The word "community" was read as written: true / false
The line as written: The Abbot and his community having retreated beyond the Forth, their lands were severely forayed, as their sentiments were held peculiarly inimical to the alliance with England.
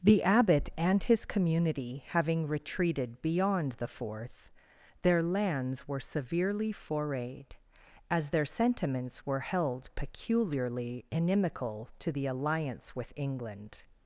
true